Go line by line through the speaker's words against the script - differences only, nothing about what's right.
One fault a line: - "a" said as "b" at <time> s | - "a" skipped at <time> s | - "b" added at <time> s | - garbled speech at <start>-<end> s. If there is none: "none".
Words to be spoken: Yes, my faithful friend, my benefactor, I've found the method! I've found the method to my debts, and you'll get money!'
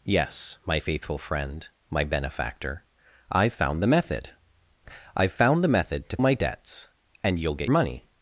none